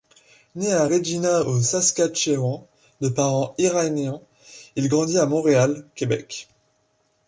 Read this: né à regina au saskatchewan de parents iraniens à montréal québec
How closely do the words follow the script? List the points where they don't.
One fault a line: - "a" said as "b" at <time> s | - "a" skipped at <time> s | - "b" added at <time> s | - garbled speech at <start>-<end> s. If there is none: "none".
- "il grandit" added at 4.8 s